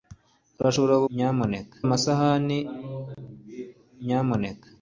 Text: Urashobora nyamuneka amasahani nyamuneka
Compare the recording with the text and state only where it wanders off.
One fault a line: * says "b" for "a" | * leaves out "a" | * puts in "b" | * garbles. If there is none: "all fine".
all fine